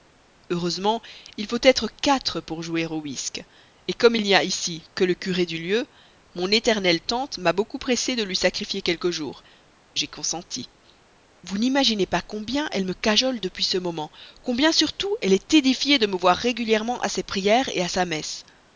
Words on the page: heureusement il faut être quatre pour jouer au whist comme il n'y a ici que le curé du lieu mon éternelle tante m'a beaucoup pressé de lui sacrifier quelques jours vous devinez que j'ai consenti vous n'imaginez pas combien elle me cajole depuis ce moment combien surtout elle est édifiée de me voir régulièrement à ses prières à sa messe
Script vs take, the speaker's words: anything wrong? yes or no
yes